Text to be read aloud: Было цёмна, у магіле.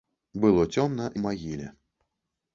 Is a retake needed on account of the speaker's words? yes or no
no